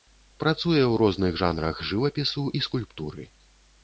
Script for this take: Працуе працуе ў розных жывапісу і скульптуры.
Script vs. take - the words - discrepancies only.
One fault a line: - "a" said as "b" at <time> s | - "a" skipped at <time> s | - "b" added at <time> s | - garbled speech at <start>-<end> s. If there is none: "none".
- "працуе" skipped at 0.8 s
- "жанрах" added at 1.4 s